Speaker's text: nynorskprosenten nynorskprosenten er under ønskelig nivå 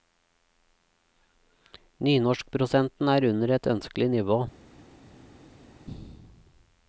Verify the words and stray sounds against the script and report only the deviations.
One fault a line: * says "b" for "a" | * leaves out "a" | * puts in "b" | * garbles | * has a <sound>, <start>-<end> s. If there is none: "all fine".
* leaves out "nynorskprosenten"
* puts in "et"